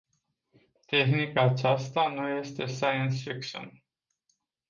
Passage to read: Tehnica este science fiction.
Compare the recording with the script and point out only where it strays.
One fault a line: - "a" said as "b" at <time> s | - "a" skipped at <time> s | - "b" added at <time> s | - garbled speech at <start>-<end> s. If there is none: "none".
- "aceasta nu" added at 1.4 s